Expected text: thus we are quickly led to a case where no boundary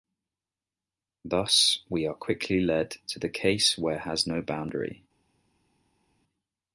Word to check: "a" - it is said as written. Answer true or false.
false